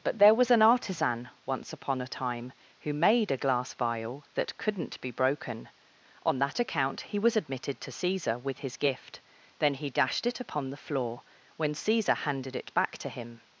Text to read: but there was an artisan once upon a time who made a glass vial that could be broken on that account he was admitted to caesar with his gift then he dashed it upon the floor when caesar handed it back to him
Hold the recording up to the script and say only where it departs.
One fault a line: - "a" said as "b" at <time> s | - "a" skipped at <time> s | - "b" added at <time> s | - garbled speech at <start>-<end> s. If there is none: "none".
- "could" said as "couldn't" at 4.6 s